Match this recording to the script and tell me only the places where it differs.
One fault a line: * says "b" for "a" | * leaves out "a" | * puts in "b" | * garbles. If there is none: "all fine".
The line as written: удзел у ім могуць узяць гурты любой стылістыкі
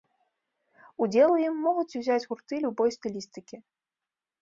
all fine